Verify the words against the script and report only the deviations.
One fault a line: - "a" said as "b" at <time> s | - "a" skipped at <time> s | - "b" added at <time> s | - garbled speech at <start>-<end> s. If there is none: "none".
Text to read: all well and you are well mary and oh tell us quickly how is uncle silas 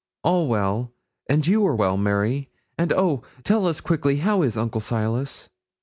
none